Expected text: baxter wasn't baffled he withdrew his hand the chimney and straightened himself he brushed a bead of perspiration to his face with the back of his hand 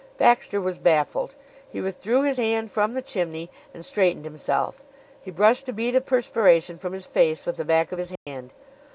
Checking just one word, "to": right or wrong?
wrong